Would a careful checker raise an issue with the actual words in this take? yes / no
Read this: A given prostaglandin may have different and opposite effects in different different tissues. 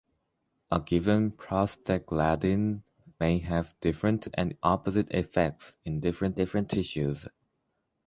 no